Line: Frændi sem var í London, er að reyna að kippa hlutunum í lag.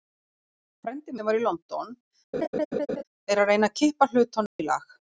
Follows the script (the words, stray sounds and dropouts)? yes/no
no